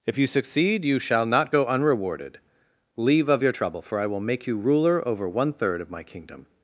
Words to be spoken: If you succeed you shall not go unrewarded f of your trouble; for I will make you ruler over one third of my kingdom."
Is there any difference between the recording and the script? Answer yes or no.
yes